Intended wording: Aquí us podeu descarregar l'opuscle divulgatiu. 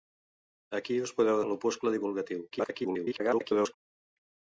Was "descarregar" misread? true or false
true